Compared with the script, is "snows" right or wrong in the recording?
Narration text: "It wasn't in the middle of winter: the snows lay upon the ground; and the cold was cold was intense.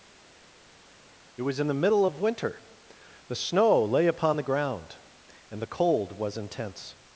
wrong